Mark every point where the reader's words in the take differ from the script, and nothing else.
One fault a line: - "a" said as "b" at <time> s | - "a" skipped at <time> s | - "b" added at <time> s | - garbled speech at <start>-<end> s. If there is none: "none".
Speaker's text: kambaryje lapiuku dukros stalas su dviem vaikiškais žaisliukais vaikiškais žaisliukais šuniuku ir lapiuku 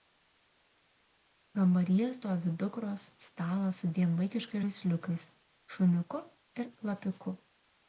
- "lapiuku" said as "stovi" at 2.2 s
- "vaikiškais žaisliukais" skipped at 5.3 s